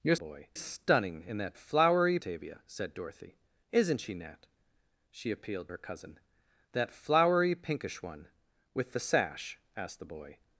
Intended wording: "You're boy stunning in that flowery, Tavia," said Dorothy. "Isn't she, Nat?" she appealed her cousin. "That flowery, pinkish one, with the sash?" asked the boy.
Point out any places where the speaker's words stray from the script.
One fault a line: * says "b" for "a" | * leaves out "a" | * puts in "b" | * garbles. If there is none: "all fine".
all fine